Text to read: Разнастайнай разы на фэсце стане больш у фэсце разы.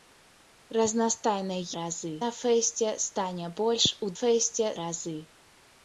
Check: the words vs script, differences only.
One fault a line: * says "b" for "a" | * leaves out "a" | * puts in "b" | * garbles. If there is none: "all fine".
all fine